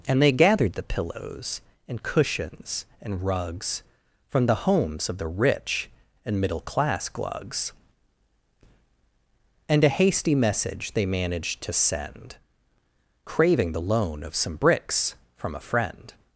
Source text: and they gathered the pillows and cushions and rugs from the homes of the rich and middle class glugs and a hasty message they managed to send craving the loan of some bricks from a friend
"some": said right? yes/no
yes